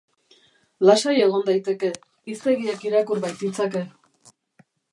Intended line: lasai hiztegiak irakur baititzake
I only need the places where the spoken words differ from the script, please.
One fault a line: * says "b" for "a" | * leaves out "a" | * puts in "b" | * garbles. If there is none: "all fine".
* puts in "egon daiteke"